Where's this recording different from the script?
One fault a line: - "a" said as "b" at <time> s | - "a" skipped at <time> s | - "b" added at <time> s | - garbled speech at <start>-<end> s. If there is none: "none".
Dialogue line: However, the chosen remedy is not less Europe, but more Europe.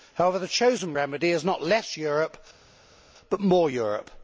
none